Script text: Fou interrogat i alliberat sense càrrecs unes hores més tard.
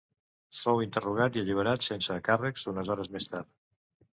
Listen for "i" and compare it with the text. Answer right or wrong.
right